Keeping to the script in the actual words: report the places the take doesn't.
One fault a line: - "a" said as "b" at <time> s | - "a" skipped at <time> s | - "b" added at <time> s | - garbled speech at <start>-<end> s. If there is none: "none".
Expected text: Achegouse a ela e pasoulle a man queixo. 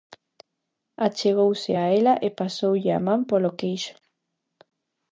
- "polo" added at 3.3 s